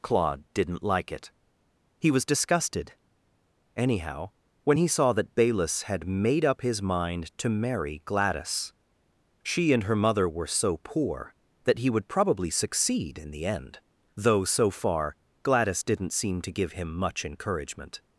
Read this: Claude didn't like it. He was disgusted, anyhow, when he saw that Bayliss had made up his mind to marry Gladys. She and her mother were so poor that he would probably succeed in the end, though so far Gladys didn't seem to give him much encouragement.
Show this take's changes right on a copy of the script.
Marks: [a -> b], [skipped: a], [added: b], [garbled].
Claude didn't like it. He was disgusted, anyhow, when he saw that Bayliss had made up his mind to marry Gladys. She and her mother were so poor that he would probably succeed in the end, though so far Gladys didn't seem to give him much encouragement.